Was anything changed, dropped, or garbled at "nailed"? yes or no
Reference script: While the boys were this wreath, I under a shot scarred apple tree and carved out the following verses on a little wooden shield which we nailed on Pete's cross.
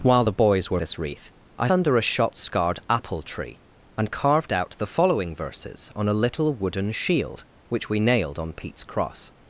no